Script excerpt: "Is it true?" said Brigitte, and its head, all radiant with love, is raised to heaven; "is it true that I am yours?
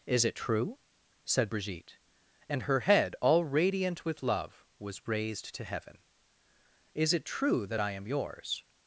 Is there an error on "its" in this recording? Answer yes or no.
yes